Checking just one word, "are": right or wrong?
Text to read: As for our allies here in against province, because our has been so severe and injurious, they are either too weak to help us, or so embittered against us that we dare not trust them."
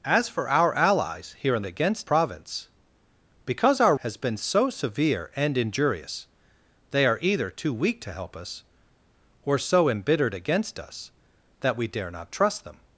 right